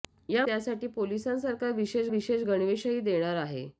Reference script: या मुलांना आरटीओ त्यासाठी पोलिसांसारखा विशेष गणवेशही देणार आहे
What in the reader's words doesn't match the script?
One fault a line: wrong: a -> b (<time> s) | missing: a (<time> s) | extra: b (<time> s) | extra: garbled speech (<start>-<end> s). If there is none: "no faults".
missing: मुलांना आरटीओ (0.5 s)
extra: विशेष (2.1 s)